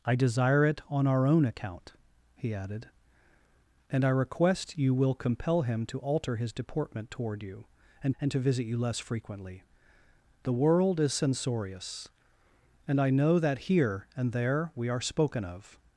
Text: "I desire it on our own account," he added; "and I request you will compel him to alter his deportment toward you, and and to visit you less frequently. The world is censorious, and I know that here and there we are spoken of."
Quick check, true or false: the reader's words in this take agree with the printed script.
true